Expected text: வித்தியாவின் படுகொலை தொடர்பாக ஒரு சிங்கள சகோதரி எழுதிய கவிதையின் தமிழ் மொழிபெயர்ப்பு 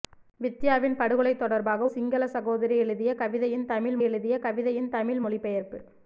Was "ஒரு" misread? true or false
true